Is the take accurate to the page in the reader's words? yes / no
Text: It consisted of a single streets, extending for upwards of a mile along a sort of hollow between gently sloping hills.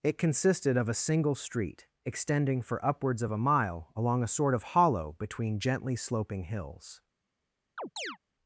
no